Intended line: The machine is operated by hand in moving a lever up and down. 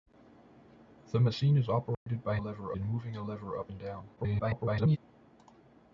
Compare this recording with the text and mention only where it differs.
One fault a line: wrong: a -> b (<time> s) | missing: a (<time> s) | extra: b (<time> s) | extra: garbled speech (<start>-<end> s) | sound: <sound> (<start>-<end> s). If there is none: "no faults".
sound: dropout (1.9-2.1 s)
wrong: hand -> lever (2.4 s)
extra: garbled speech (4.2-5.0 s)